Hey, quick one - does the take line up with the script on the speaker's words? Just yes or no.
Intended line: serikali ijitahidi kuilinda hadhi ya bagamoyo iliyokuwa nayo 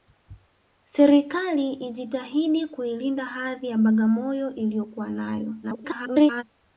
no